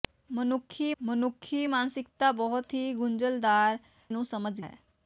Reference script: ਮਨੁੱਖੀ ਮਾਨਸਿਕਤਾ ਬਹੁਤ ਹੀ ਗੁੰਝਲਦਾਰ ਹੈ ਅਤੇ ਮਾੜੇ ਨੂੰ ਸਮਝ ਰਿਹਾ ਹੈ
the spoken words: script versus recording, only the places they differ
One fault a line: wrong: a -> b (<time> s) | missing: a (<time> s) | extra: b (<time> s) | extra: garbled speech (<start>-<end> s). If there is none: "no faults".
extra: ਮਨੁੱਖੀ (1.0 s)
missing: ਹੈ ਅਤੇ ਮਾੜੇ (3.8 s)
missing: ਰਿਹਾ (4.6 s)